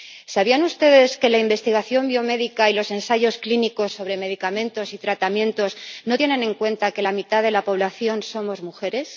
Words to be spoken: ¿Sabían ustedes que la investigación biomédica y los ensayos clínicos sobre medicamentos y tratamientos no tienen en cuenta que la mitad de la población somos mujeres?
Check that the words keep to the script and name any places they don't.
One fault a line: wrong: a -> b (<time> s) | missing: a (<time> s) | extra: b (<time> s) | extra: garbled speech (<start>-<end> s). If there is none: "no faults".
no faults